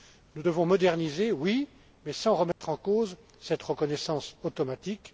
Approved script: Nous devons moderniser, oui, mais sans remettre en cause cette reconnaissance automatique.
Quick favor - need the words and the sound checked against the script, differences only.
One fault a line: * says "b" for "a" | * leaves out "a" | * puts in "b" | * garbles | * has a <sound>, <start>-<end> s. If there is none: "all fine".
* has a dropout, 2.5-2.6 s